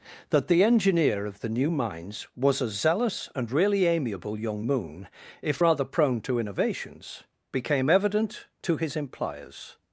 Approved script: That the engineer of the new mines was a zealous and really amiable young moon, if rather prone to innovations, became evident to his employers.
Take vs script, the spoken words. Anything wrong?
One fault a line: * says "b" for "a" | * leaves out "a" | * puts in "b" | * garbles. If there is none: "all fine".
all fine